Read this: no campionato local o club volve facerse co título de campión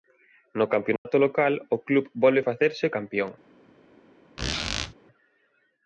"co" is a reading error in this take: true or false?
true